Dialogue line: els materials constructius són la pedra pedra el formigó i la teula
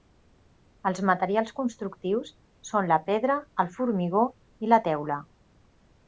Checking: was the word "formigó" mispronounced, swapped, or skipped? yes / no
no